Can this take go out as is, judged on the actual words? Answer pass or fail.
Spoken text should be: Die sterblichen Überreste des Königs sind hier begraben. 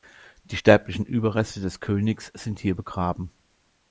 pass